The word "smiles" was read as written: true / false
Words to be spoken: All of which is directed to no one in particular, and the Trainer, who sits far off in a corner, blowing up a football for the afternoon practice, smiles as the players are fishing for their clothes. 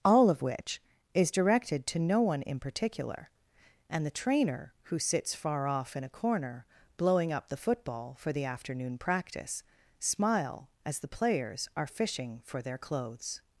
false